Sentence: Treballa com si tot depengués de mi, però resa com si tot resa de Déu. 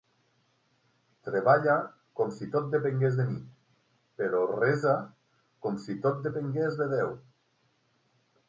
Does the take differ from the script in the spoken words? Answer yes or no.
yes